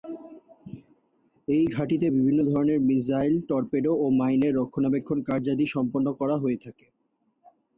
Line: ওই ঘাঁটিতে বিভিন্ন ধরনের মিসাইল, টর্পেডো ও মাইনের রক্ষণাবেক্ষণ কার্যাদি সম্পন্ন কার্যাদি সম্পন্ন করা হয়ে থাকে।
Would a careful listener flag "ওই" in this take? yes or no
yes